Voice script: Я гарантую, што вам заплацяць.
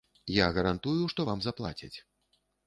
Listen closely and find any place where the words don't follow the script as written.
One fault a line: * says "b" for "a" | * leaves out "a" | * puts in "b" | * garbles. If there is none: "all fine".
all fine